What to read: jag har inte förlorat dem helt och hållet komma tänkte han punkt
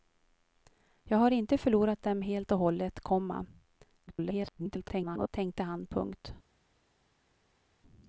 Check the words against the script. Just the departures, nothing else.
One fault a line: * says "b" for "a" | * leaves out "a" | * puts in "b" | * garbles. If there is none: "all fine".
* garbles